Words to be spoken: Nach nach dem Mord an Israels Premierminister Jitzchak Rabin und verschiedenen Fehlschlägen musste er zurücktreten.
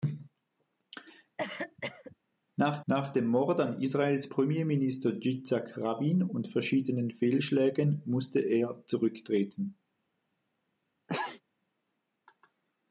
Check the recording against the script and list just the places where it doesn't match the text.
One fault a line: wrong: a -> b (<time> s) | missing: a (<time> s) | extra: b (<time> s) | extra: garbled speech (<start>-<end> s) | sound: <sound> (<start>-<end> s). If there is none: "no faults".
sound: cough (1.4-2.2 s)
sound: sneeze (11.1-11.4 s)